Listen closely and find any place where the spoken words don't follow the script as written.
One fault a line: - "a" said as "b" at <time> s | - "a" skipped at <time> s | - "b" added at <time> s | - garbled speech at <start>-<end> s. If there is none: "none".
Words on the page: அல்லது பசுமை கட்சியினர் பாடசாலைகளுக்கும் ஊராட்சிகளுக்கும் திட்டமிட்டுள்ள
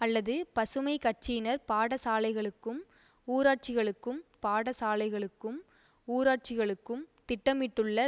- "பாடசாலைகளுக்கும் ஊராட்சிகளுக்கும்" added at 4.4 s